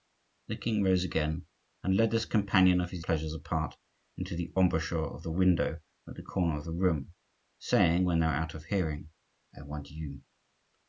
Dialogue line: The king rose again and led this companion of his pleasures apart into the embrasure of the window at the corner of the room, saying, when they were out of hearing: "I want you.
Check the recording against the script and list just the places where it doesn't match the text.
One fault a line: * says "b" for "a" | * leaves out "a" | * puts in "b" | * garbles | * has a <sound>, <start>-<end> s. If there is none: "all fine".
all fine